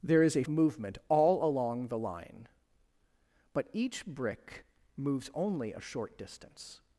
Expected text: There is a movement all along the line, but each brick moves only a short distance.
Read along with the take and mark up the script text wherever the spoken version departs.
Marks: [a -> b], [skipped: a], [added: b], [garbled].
There is a movement all along the line, but each brick moves only a short distance.